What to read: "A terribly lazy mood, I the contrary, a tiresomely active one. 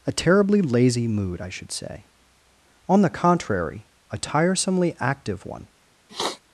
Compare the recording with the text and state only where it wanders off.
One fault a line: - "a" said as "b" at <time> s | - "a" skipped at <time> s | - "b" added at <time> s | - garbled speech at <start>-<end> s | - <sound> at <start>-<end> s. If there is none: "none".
- "should say On" added at 1.5 s
- sniff at 6.1-6.4 s